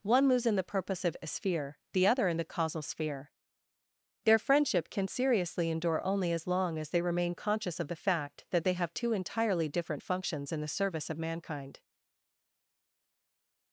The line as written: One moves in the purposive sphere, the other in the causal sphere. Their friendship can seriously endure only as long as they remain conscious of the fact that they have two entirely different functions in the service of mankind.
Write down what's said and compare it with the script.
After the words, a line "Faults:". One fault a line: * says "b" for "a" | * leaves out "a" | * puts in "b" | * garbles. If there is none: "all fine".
One moves in the purposive sphere, the other in the causal sphere. Their friendship can seriously endure only as long as they remain conscious of the fact that they have two entirely different functions in the service of mankind.
Faults:
all fine